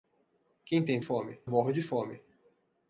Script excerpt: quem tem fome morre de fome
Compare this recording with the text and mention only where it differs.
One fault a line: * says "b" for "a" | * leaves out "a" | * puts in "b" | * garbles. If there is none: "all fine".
all fine